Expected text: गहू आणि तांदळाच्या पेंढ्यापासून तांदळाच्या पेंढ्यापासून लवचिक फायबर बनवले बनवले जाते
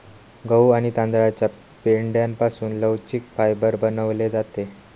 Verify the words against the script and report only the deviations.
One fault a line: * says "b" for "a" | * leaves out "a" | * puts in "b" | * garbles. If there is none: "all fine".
* leaves out "तांदळाच्या पेंढ्यापासून"
* leaves out "बनवले"